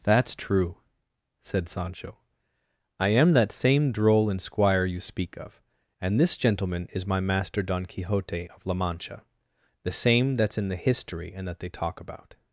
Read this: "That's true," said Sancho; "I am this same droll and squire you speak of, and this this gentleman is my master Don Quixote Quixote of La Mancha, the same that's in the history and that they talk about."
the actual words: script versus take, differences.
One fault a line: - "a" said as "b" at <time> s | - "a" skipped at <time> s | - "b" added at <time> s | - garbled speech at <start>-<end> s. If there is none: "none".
- "this" said as "that" at 3.3 s
- "this" skipped at 6.4 s
- "Quixote" skipped at 8.5 s